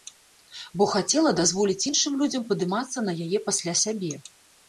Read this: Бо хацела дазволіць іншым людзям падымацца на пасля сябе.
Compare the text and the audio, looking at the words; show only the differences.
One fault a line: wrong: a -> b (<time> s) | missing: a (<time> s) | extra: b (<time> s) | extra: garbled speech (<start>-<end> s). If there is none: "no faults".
extra: яе (3.3 s)